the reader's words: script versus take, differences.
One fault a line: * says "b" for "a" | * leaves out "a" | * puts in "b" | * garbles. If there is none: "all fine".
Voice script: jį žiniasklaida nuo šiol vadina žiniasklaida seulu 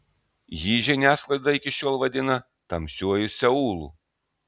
* says "iki" for "nuo"
* says "tamsiuoju" for "žiniasklaida"